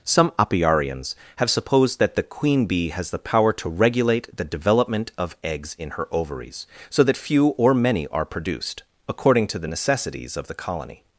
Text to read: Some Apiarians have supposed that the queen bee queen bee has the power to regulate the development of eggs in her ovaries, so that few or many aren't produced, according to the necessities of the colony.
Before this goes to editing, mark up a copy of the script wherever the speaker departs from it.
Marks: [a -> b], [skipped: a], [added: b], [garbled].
Some Apiarians have supposed that the queen bee [skipped: queen bee] has the power to regulate the development of eggs in her ovaries, so that few or many [aren't -> are] produced, according to the necessities of the colony.